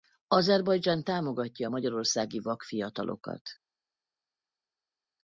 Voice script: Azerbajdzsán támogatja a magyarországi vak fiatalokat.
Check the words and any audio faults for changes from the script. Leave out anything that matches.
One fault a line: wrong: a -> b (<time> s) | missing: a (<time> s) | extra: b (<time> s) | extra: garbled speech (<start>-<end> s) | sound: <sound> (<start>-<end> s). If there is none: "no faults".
no faults